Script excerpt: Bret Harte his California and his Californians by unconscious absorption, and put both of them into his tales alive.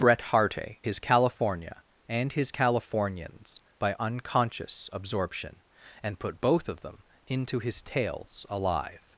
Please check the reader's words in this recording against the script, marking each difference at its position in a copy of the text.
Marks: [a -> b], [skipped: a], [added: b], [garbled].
Bret Harte his California and his Californians by unconscious absorption, and put both of them into his tales alive.